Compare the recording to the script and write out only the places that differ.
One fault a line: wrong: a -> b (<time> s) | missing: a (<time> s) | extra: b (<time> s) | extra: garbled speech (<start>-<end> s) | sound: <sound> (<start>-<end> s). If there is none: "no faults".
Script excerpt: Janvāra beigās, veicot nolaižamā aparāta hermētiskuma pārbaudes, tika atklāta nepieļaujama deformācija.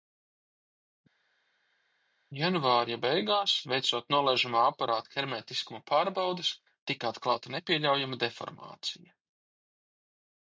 no faults